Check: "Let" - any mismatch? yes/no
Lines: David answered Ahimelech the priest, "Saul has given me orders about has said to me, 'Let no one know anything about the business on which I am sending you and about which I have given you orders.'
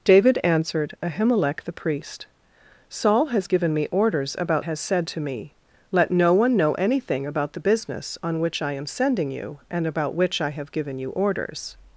no